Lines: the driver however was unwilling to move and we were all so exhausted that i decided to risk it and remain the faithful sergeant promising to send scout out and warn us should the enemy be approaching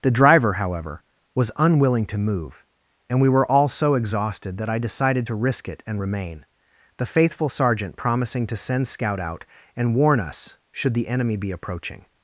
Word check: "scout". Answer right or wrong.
right